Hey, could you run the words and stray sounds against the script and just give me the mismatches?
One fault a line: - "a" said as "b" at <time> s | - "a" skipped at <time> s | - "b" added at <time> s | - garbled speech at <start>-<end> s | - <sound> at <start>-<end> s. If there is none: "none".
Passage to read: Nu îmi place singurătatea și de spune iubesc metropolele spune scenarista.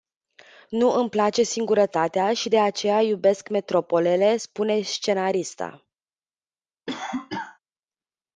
- "spune" said as "aceea" at 2.6 s
- cough at 6.9-7.6 s